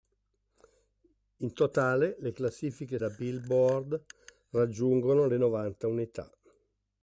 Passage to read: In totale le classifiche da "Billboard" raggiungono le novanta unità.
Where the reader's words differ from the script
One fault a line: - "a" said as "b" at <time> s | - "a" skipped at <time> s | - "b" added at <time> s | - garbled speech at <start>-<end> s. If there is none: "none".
none